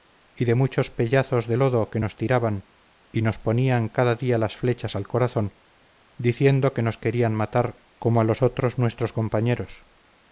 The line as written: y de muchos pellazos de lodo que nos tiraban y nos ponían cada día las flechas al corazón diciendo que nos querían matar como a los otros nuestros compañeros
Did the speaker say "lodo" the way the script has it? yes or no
yes